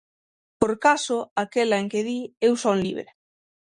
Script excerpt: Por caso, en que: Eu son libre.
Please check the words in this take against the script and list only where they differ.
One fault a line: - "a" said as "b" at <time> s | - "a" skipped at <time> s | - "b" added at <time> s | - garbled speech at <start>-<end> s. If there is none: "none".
- "aquela" added at 1.4 s
- "di" added at 2.1 s